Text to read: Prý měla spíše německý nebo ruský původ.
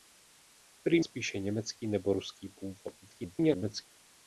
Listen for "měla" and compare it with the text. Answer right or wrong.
wrong